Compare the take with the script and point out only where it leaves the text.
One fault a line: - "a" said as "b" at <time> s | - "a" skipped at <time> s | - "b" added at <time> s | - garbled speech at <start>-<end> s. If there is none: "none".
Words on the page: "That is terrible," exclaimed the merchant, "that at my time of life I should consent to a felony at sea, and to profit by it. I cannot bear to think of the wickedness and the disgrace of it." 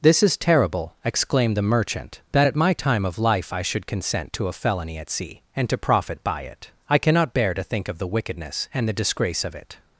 - "That" said as "This" at 0.0 s